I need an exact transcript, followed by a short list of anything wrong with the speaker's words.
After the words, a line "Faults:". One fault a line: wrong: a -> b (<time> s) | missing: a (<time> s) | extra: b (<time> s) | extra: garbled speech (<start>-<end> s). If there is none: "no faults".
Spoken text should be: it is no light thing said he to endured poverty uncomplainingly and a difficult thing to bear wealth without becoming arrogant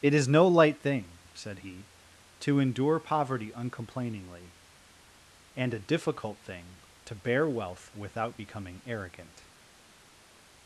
it is no light thing said he to endure poverty uncomplainingly and a difficult thing to bear wealth without becoming arrogant
Faults:
wrong: endured -> endure (2.6 s)